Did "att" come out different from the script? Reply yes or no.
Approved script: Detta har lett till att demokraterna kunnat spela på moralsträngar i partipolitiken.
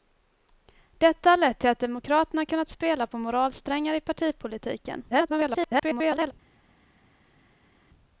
no